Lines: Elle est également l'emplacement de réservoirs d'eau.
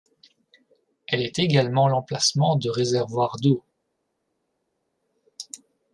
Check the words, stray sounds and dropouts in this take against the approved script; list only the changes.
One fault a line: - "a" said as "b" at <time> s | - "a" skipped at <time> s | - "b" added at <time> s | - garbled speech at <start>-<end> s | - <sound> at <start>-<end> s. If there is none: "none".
none